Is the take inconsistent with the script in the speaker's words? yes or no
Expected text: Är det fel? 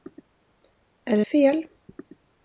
no